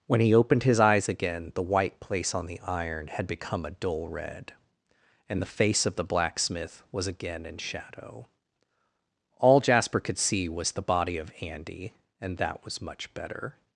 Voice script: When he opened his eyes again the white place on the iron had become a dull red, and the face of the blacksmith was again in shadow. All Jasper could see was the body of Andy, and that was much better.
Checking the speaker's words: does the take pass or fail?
pass